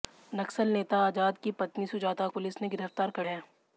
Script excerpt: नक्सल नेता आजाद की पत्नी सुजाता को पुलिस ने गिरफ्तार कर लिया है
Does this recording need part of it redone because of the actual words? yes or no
yes